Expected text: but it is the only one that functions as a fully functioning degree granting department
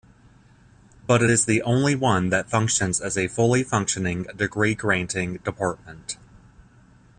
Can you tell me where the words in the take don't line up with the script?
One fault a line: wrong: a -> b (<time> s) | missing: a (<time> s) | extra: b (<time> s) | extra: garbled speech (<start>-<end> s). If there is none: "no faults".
no faults